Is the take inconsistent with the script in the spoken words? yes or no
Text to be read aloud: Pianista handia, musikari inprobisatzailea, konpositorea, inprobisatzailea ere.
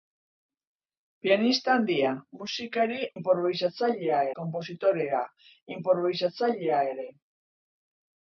no